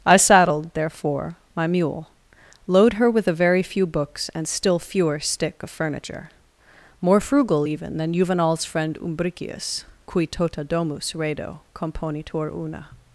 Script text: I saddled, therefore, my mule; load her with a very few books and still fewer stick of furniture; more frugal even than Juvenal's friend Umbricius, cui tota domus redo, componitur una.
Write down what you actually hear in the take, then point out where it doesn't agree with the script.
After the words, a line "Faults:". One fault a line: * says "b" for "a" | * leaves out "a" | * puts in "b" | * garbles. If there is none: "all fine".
I saddled, therefore, my mule; load her with a very few books and still fewer stick of furniture; more frugal even than Juvenal's friend Umbricius, cui tota domus redo, componitur una.
Faults:
all fine